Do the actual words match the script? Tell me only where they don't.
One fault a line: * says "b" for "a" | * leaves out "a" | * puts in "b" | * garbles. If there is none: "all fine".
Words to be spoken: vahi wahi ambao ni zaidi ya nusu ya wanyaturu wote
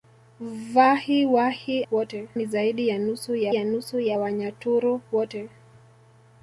* says "wote" for "ambao"
* puts in "ya nusu ya"